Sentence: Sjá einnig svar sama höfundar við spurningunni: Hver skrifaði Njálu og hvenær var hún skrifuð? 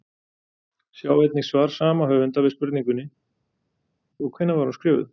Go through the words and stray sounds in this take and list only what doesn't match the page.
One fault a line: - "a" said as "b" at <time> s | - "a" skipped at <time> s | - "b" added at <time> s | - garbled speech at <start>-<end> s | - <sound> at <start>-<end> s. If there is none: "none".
- "Hver skrifaði Njálu" skipped at 3.1 s